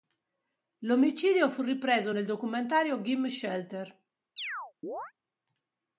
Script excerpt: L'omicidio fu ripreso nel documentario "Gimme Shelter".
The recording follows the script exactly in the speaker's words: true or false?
true